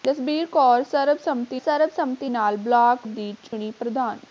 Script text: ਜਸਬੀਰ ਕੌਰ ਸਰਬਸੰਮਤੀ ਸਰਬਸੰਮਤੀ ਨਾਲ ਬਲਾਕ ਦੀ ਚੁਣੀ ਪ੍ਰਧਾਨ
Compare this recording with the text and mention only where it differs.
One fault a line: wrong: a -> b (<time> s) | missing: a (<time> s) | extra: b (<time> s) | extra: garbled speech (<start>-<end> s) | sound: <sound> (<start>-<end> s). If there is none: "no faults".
sound: dropout (3.5-3.5 s)